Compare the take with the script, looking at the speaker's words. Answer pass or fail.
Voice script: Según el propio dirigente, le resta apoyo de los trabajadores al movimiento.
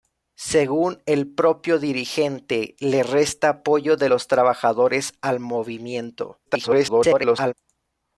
fail